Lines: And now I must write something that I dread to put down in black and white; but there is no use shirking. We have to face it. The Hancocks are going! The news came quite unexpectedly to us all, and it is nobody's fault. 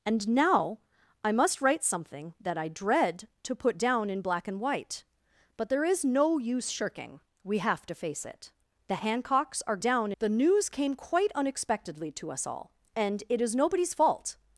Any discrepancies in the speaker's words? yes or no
yes